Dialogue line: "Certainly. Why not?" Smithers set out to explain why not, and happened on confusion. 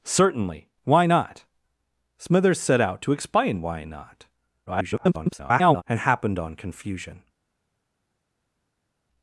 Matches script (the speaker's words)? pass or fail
fail